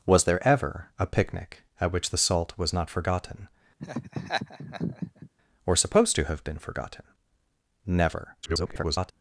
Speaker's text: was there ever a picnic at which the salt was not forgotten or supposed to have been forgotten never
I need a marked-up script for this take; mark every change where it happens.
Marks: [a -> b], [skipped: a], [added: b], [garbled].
was there ever a picnic at which the salt was not forgotten or supposed to have been forgotten never [garbled]